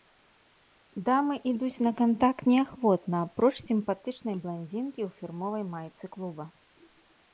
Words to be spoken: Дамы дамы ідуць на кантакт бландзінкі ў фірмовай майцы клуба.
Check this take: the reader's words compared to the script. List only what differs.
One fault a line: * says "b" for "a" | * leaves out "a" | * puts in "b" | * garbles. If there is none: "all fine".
* leaves out "дамы"
* puts in "неахвотна апроч сімпатычнай"